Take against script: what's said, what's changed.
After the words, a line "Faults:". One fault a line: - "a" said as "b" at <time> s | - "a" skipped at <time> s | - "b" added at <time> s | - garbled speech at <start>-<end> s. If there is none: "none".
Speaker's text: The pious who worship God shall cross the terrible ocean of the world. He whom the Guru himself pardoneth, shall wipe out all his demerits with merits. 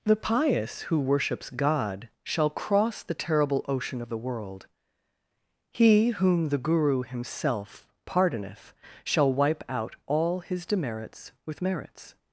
The pious who worships God shall cross the terrible ocean of the world. He whom the Guru himself pardoneth, shall wipe out all his demerits with merits.
Faults:
- "worship" said as "worships" at 1.0 s